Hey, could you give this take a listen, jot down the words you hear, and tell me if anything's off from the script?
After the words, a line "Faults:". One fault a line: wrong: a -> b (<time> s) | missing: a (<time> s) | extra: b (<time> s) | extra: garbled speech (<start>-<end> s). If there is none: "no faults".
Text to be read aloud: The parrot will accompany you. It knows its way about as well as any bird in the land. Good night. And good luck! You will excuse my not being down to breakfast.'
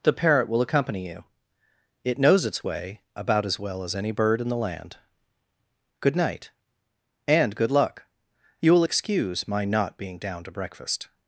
The parrot will accompany you. It knows its way about as well as any bird in the land. Good night. And good luck! You will excuse my not being down to breakfast.'
Faults:
no faults